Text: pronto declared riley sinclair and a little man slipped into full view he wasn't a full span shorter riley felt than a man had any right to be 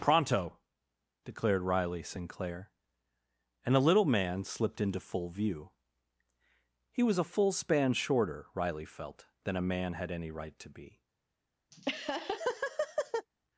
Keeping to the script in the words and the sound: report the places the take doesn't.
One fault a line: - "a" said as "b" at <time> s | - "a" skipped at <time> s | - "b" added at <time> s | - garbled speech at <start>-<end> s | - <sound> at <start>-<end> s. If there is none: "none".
- "wasn't" said as "was" at 7.0 s
- laugh at 11.7-13.3 s